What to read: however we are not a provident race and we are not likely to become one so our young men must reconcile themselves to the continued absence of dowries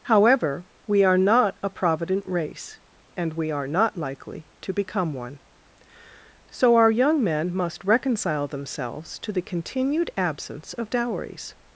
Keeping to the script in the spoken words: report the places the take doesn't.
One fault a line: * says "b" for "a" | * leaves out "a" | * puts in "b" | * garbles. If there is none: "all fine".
all fine